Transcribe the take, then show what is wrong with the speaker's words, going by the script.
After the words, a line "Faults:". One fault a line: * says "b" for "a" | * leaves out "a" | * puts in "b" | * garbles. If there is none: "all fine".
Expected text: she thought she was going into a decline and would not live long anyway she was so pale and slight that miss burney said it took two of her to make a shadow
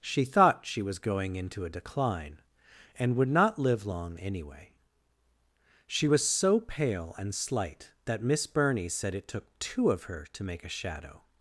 she thought she was going into a decline and would not live long anyway she was so pale and slight that miss burney said it took two of her to make a shadow
Faults:
all fine